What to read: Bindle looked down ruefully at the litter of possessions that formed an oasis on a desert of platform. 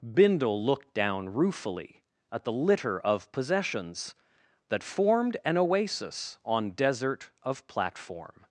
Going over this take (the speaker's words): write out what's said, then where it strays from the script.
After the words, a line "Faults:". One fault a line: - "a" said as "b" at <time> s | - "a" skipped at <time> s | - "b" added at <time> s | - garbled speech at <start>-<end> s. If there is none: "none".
Bindle looked down ruefully at the litter of possessions that formed an oasis on desert of platform.
Faults:
- "a" skipped at 6.7 s